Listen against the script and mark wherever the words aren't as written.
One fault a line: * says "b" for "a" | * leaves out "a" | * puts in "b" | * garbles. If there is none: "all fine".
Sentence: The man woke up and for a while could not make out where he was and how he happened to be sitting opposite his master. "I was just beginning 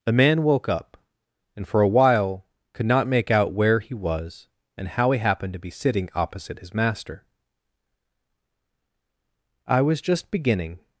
all fine